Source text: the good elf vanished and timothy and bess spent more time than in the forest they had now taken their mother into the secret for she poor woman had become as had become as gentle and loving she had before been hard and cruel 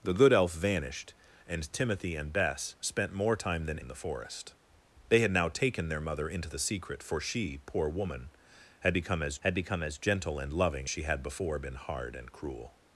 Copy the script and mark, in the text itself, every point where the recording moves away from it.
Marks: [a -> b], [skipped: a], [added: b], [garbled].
the good elf vanished and timothy and bess spent more time than in the forest they had now taken their mother into the secret for she poor woman had become as had become as gentle and loving she had before been hard and cruel